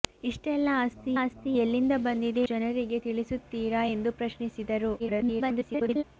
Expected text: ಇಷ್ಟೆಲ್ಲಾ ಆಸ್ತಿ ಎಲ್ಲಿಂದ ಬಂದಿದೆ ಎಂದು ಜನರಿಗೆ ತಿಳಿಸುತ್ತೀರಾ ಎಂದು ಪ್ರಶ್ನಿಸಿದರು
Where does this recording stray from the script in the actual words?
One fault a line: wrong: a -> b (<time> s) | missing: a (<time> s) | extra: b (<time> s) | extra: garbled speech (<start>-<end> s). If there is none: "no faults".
extra: ಆಸ್ತಿ (1.2 s)
missing: ಎಂದು (2.4 s)
extra: garbled speech (5.0-6.0 s)